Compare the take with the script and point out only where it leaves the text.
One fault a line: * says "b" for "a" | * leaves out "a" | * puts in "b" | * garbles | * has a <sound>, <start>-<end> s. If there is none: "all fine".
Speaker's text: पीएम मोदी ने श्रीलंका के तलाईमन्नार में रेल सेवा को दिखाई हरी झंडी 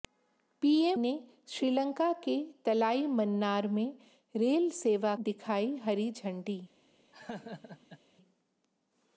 * leaves out "मोदी"
* leaves out "को"
* has a laugh, 7.1-8.0 s